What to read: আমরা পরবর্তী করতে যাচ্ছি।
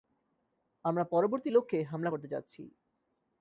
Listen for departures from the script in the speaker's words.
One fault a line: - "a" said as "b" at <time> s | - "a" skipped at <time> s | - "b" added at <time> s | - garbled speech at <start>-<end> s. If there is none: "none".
- "লক্ষ্যে হামলা" added at 1.5 s